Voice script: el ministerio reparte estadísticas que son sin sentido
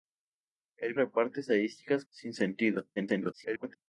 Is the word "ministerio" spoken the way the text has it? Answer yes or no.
no